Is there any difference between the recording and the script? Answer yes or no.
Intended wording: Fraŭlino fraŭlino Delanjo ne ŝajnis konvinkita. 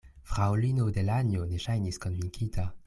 yes